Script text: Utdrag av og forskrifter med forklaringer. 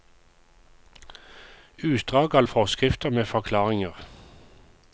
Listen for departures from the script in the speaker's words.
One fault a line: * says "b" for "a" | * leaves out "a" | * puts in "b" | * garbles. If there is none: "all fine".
all fine